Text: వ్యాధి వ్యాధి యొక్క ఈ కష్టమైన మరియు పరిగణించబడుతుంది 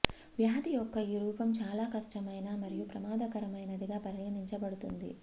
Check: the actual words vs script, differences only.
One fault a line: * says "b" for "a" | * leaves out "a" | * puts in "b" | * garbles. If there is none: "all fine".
* leaves out "వ్యాధి"
* puts in "రూపం చాలా"
* puts in "ప్రమాదకరమైనదిగా"